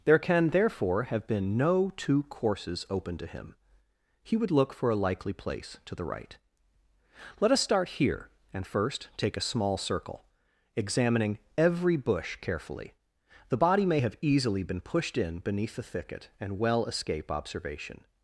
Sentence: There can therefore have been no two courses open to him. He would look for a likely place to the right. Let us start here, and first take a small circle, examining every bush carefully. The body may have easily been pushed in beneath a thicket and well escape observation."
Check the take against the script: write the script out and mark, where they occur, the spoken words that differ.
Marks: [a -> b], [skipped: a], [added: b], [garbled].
There can therefore have been no two courses open to him. He would look for a likely place to the right. Let us start here, and first take a small circle, examining every bush carefully. The body may have easily been pushed in beneath [a -> the] thicket and well escape observation."